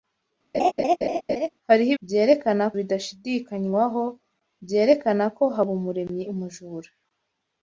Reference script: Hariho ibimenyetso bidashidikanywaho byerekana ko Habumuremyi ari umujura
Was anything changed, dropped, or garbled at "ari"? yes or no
yes